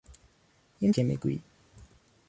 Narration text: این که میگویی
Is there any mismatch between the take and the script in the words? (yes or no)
no